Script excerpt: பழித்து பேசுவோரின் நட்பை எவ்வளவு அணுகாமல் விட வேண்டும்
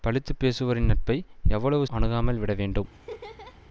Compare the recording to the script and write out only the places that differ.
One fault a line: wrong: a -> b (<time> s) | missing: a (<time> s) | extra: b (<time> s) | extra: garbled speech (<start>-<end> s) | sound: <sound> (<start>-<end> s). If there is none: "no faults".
sound: laugh (2.9-3.6 s)